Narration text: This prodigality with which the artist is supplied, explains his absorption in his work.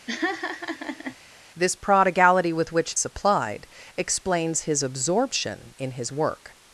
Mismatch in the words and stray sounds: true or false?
true